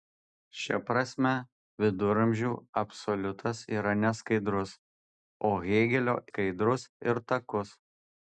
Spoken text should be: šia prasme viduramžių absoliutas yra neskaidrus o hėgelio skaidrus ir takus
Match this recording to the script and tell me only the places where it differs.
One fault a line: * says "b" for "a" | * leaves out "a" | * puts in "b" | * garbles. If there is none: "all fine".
all fine